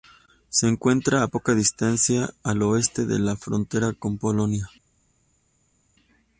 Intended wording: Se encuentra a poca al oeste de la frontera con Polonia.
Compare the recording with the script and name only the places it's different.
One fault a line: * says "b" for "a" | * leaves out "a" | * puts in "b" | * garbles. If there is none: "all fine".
* puts in "distancia"